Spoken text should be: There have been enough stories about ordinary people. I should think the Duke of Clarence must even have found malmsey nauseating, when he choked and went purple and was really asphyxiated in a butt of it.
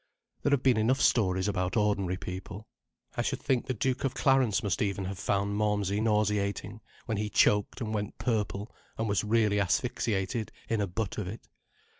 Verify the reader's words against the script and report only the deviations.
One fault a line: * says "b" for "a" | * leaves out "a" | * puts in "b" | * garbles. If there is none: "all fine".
all fine